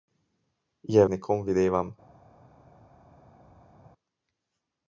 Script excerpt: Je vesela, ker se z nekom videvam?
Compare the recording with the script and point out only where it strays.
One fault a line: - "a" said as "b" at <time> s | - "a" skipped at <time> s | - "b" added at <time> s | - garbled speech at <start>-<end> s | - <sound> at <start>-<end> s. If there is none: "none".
- "vesela ker se" skipped at 1.0 s